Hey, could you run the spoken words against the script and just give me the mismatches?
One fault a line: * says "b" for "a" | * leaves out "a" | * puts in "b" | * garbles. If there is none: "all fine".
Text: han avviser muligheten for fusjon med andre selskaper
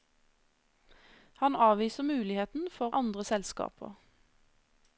* leaves out "fusjon med"